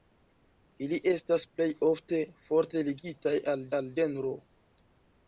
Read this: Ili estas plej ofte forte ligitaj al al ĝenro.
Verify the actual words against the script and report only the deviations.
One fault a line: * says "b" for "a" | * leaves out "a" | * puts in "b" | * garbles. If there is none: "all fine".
all fine